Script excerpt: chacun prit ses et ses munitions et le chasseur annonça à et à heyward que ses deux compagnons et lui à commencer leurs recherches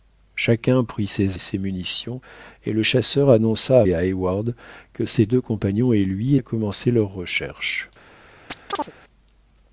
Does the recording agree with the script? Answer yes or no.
yes